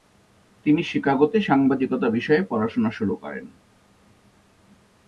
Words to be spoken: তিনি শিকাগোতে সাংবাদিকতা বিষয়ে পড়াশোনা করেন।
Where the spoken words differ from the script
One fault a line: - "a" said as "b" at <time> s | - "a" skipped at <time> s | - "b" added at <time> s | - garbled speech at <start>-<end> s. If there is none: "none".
- "শুরু" added at 2.9 s